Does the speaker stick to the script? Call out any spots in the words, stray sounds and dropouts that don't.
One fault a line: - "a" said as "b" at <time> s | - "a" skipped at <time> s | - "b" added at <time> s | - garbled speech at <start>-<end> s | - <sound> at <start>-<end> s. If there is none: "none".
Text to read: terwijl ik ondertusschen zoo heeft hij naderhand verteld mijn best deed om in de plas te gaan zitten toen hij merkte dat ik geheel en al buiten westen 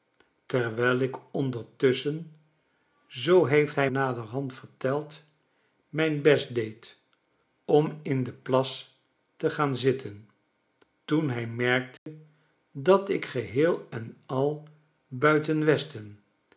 - dropout at 12.0-12.1 s